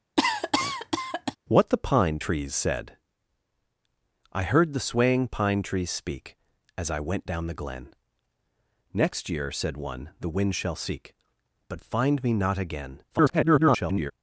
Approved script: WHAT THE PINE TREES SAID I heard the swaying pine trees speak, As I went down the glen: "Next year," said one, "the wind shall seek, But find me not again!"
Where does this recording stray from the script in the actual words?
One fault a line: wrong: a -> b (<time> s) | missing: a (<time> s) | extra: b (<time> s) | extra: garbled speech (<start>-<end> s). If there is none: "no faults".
extra: garbled speech (13.1-14.1 s)